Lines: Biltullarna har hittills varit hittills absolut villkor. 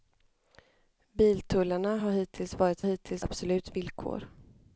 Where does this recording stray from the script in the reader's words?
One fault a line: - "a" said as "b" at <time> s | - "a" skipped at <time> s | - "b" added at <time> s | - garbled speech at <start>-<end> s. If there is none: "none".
none